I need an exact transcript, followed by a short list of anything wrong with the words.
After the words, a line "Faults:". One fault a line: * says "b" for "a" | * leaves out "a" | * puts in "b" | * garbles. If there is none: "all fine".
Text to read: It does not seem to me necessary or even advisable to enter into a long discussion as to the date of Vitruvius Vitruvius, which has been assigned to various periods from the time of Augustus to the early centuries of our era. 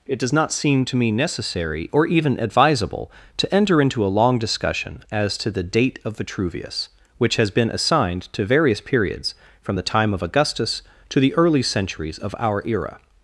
It does not seem to me necessary or even advisable to enter into a long discussion as to the date of Vitruvius, which has been assigned to various periods from the time of Augustus to the early centuries of our era.
Faults:
* leaves out "Vitruvius"